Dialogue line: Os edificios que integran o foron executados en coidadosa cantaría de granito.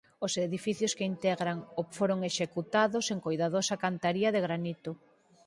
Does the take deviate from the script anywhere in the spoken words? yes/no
no